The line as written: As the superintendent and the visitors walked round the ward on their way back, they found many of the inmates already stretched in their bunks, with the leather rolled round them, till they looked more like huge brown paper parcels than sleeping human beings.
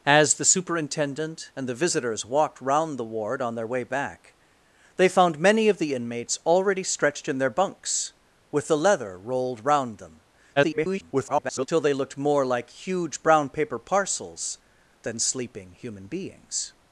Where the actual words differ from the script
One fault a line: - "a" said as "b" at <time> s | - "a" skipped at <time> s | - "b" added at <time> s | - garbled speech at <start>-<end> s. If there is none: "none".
- garbled speech at 10.6-11.7 s